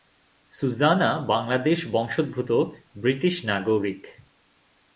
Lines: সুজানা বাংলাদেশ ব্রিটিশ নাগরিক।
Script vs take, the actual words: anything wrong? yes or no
yes